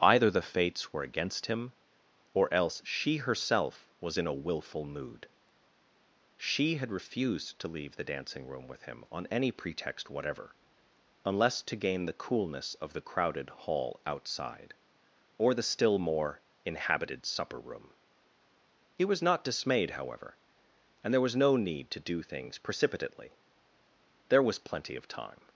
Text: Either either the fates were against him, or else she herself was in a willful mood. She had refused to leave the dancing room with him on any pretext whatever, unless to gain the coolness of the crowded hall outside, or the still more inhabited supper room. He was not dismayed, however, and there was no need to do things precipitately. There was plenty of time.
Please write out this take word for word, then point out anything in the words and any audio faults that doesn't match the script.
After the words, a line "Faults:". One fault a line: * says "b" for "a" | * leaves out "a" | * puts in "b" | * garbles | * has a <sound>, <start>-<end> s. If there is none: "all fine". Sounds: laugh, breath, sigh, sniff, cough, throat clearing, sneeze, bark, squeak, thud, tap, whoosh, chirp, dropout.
Either the fates were against him, or else she herself was in a willful mood. She had refused to leave the dancing room with him on any pretext whatever, unless to gain the coolness of the crowded hall outside, or the still more inhabited supper room. He was not dismayed, however, and there was no need to do things precipitately. There was plenty of time.
Faults:
* leaves out "either"